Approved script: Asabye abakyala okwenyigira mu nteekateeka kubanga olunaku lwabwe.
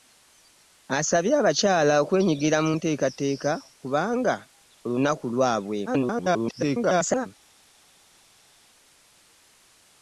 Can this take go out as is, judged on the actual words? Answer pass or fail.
fail